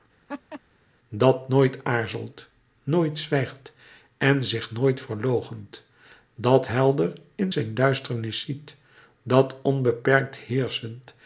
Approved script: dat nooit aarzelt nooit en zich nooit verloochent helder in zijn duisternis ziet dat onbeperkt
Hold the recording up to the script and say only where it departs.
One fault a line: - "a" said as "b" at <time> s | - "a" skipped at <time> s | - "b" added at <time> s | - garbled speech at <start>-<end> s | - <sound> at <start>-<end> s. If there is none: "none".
- laugh at 0.3-0.6 s
- "zwijgt" added at 3.2 s
- "dat" added at 6.3 s